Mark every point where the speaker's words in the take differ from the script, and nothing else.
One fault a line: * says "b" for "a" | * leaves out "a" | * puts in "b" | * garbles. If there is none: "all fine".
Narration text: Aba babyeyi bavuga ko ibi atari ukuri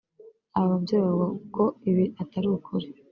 all fine